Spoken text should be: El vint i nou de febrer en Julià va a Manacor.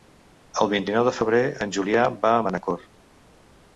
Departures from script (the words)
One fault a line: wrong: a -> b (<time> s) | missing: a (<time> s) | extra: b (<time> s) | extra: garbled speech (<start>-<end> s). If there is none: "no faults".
no faults